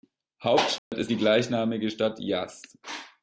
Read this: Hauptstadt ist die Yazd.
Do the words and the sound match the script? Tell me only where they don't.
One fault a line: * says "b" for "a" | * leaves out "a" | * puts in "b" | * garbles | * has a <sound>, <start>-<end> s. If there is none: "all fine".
* has a dropout, 0.8-0.9 s
* puts in "gleichnamige Stadt"